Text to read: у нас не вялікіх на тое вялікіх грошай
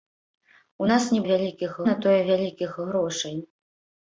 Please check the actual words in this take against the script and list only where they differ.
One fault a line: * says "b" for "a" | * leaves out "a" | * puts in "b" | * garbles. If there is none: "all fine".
all fine